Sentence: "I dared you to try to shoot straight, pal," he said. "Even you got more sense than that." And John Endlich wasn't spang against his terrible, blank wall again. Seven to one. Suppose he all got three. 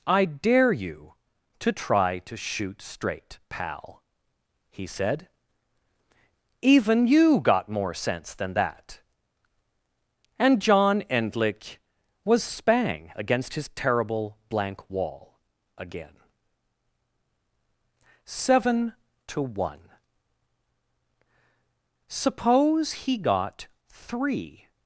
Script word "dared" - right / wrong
wrong